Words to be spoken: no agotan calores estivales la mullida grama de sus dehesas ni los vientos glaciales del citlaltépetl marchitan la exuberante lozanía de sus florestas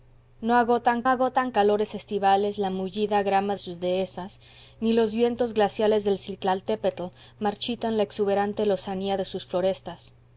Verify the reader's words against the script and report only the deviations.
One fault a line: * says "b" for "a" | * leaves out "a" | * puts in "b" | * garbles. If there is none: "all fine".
* puts in "agotan"
* leaves out "de"